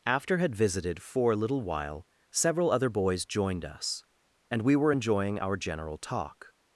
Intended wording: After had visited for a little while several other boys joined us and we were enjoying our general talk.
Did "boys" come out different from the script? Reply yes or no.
no